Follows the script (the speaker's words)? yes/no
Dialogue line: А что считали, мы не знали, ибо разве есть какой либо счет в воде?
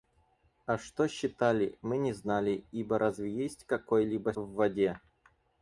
no